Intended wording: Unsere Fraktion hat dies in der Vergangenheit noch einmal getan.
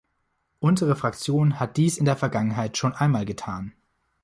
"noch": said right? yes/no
no